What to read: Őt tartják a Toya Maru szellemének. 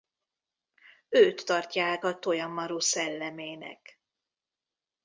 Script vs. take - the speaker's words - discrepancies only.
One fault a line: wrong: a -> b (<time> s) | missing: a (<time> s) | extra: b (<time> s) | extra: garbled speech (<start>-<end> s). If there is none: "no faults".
no faults